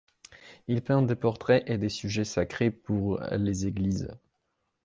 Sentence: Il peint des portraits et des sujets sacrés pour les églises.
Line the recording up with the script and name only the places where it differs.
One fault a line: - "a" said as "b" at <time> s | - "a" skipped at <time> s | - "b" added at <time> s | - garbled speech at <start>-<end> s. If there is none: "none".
none